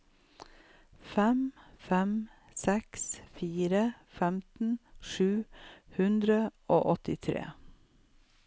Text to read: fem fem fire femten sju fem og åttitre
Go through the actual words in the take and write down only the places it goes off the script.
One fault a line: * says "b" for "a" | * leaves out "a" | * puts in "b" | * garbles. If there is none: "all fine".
* puts in "seks"
* says "hundre" for "fem"